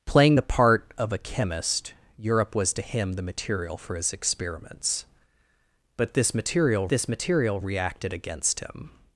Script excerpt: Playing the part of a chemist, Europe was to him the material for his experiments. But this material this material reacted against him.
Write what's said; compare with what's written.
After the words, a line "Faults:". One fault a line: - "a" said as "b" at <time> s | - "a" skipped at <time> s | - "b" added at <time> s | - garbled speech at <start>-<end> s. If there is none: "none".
Playing the part of a chemist, Europe was to him the material for his experiments. But this material this material reacted against him.
Faults:
none